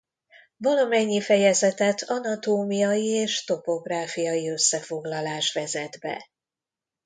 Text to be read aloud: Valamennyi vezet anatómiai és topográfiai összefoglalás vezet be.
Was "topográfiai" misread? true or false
false